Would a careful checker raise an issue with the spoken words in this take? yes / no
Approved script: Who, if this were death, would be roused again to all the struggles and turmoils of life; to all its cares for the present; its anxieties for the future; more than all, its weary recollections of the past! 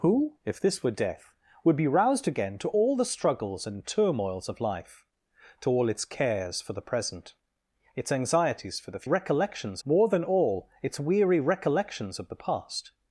yes